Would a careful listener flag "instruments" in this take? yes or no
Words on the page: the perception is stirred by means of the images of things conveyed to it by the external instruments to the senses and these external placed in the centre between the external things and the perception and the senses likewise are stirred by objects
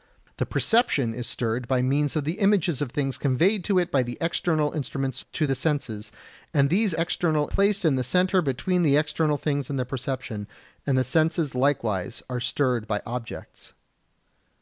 no